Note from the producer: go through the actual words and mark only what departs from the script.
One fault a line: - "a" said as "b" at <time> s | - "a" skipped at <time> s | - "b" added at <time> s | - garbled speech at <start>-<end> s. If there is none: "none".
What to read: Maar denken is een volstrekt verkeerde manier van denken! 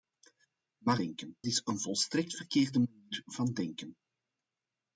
none